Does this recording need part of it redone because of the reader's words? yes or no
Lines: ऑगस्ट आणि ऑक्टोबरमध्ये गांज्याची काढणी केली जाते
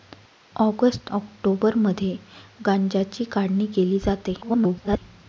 yes